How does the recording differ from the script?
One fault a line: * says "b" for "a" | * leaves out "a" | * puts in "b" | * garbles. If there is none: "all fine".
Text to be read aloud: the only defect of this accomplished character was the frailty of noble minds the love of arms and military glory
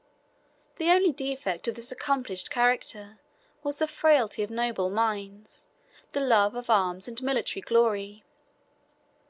all fine